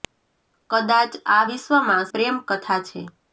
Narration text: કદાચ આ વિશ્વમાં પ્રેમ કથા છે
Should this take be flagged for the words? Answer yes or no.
no